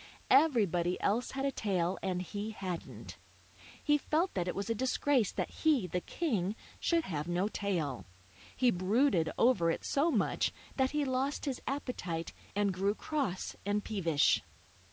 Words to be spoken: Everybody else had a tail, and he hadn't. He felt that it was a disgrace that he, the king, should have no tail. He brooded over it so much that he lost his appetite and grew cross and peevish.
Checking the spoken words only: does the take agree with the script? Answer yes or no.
yes